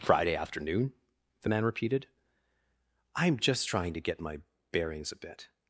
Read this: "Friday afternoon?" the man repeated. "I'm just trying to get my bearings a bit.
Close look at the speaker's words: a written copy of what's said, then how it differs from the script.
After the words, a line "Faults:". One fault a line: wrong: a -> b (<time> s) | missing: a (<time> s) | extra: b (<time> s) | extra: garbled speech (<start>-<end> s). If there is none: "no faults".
"Friday afternoon?" the man repeated. "I'm just trying to get my bearings a bit.
Faults:
no faults